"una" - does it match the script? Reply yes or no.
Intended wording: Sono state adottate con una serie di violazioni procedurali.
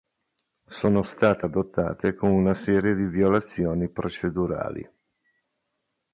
yes